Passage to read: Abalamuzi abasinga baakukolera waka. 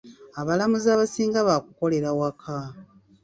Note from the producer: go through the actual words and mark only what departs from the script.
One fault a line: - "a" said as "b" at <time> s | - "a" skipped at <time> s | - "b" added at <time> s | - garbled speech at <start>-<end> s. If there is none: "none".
none